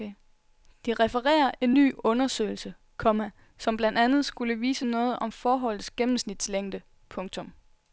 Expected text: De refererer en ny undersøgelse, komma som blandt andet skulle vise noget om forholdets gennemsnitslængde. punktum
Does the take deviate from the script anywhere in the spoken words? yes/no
no